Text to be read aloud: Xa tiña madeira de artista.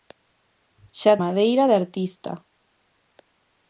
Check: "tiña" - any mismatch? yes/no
yes